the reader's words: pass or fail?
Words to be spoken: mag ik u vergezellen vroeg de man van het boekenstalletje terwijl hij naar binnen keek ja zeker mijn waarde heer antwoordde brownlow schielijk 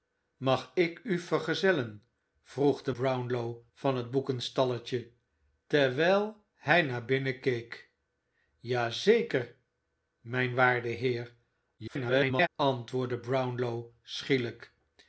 fail